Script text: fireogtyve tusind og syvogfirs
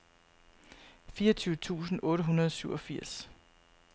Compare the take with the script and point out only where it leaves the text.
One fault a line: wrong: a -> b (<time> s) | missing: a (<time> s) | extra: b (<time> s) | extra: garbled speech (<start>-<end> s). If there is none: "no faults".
extra: otte hundrede (2.0 s)